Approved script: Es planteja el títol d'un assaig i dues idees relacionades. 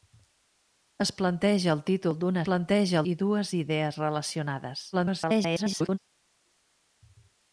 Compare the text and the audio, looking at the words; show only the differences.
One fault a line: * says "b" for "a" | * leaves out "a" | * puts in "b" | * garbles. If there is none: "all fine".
* says "planteja" for "assaig"
* garbles